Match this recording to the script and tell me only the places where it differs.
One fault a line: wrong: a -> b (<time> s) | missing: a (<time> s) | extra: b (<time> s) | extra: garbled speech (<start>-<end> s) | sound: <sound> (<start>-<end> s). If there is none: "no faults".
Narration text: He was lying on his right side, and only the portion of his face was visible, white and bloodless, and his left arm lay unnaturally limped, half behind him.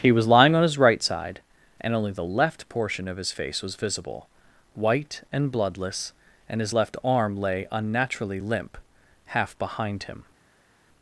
extra: left (2.2 s)
wrong: limped -> limp (8.4 s)